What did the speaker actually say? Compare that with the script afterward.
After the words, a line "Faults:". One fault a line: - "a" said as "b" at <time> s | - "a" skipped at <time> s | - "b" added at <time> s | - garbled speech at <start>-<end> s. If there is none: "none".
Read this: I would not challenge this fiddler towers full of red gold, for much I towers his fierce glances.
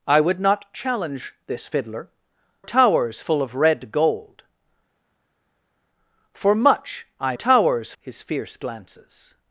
I would not challenge this fiddler towers full of red gold, for much I towers his fierce glances.
Faults:
none